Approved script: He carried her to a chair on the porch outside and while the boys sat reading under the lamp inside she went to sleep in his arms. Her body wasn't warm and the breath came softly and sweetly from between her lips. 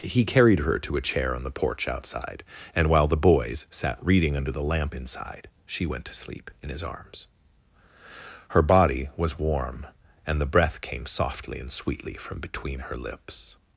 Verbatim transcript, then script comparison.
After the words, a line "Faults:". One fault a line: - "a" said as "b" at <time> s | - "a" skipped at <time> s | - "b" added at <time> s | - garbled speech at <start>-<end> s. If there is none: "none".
He carried her to a chair on the porch outside and while the boys sat reading under the lamp inside she went to sleep in his arms. Her body was warm and the breath came softly and sweetly from between her lips.
Faults:
- "wasn't" said as "was" at 9.2 s